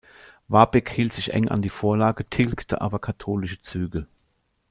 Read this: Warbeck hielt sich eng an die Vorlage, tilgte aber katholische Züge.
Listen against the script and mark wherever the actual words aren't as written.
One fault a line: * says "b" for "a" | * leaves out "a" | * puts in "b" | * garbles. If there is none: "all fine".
all fine